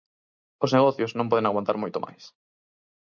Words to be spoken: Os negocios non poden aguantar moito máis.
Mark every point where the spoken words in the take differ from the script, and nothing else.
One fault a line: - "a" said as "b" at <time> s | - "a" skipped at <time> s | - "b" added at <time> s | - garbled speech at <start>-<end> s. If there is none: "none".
none